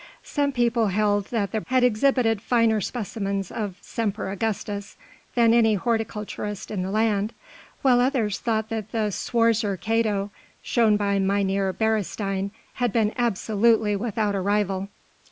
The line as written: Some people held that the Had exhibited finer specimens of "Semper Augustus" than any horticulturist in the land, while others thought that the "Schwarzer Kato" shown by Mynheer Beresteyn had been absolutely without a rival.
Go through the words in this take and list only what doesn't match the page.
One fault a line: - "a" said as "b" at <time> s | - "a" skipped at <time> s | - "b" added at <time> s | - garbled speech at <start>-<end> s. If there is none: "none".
none